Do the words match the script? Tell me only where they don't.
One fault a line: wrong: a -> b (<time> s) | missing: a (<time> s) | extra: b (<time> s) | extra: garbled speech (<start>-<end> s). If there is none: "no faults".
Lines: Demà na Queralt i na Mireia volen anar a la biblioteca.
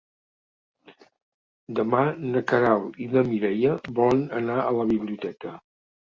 no faults